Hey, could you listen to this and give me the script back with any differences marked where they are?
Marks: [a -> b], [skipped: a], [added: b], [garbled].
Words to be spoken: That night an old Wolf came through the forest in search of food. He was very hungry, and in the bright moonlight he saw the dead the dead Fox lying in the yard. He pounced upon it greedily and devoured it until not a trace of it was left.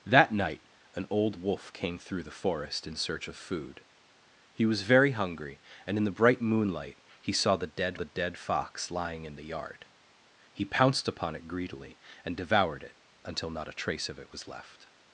That night an old Wolf came through the forest in search of food. He was very hungry, and in the bright moonlight he saw the dead the dead Fox lying in the yard. He pounced upon it greedily and devoured it until not a trace of it was left.